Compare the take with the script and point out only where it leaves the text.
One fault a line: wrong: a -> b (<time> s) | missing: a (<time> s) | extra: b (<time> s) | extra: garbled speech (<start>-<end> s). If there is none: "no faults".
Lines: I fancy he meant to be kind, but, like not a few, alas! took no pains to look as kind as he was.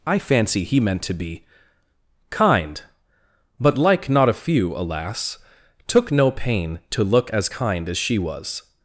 wrong: pains -> pain (6.3 s)
wrong: he -> she (8.0 s)